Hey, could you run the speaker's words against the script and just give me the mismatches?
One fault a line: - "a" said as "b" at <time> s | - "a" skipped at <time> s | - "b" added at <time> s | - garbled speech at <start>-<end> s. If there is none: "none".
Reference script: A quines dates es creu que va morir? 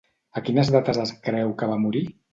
none